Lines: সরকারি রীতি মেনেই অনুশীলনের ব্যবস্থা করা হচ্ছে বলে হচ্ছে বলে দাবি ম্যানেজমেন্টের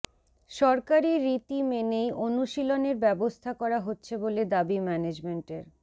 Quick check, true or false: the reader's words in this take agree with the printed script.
false